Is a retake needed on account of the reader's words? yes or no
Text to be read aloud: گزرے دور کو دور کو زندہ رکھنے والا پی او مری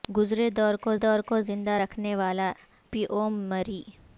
no